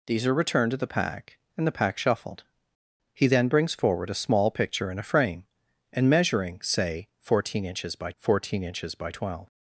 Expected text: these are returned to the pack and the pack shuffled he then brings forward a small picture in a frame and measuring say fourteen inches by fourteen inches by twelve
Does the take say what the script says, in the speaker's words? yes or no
yes